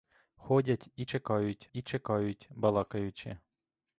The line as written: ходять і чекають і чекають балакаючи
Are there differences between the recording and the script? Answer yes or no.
no